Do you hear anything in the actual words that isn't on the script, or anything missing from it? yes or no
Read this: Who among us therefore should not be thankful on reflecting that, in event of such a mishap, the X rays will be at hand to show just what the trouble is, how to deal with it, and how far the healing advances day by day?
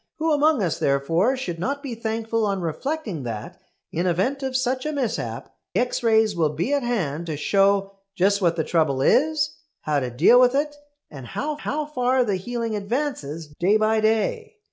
yes